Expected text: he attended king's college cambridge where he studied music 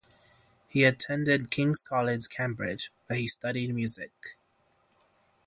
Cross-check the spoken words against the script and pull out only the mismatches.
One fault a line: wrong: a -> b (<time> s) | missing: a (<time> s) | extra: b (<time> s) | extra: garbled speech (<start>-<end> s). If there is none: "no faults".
no faults